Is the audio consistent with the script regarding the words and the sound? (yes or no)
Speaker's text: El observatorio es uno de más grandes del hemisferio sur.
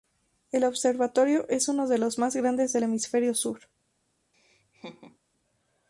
no